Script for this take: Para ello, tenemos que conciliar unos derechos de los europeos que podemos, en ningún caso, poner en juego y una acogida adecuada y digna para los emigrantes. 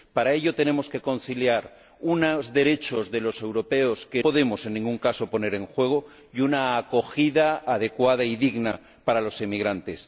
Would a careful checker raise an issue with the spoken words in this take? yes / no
no